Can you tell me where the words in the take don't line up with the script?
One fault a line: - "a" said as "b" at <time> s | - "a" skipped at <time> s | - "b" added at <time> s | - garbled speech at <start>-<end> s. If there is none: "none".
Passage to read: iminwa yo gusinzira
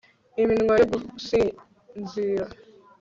none